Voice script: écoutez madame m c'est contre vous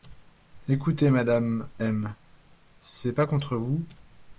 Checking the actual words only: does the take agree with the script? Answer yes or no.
no